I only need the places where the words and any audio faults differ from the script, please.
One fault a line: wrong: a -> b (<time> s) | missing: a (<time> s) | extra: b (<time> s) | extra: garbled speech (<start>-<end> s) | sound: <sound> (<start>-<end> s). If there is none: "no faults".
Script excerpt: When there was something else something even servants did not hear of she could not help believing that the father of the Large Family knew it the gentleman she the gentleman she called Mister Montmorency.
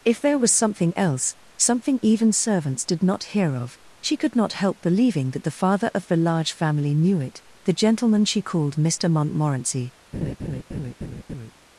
wrong: When -> If (0.0 s)
missing: the gentleman she (8.4 s)
sound: laugh (10.1-11.5 s)